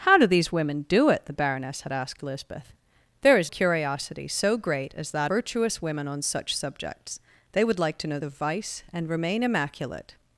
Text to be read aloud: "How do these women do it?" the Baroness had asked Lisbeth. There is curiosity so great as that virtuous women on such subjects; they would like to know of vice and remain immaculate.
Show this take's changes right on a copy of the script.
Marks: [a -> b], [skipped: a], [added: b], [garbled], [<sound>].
"How do these women do it?" the Baroness had asked Lisbeth. There is curiosity so great as that virtuous women on such subjects; they would like to know of vice and remain immaculate.